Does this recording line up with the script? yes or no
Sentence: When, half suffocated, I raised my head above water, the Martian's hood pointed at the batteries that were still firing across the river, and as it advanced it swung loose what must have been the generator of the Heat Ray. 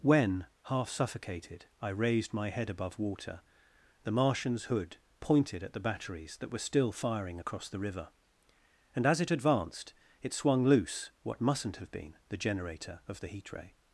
no